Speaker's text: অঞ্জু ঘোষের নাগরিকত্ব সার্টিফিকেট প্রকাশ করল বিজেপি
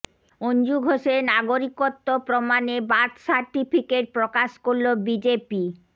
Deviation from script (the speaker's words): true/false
true